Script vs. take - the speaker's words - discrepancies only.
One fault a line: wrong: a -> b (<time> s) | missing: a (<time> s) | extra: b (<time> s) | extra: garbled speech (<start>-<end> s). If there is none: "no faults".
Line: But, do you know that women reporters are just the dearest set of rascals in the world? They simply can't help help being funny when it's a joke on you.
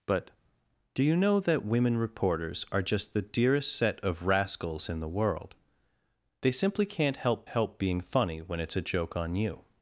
no faults